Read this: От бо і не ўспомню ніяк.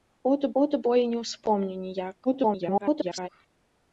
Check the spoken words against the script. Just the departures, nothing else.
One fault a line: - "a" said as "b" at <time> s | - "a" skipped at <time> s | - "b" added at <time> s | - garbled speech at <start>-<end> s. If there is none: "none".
- "от" added at 0.6 s
- garbled speech at 2.2-3.3 s